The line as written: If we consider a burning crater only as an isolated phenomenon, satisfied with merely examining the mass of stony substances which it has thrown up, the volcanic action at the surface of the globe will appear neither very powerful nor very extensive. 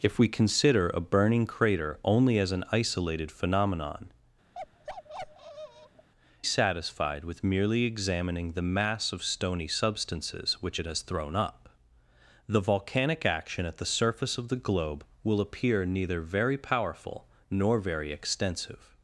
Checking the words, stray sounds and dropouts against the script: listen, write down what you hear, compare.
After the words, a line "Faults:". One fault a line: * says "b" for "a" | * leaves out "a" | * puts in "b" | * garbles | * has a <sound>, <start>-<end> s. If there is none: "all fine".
If we consider a burning crater only as an isolated phenomenon, satisfied with merely examining the mass of stony substances which it has thrown up, the volcanic action at the surface of the globe will appear neither very powerful nor very extensive.
Faults:
* has a bark, 4.5-6.1 s